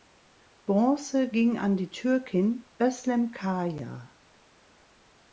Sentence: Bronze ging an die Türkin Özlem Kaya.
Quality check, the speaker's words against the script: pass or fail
pass